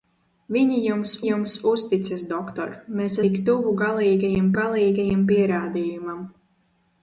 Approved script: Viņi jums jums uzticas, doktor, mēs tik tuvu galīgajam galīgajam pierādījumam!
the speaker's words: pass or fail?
pass